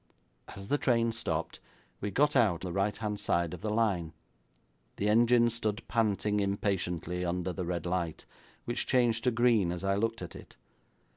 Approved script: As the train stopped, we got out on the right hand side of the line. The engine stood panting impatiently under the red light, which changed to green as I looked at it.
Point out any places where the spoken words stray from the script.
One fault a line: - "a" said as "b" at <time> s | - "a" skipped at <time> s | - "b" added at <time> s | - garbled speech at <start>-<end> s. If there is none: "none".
- "on" skipped at 2.6 s